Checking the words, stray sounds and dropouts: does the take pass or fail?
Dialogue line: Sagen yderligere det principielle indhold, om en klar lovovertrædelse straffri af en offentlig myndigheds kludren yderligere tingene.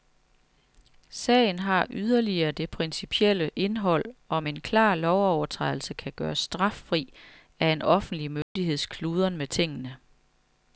fail